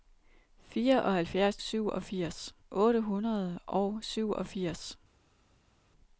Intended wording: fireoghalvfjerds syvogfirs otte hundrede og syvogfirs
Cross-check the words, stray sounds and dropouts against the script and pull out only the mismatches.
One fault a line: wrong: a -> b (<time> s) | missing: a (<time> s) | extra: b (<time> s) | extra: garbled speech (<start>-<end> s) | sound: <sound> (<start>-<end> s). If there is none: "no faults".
no faults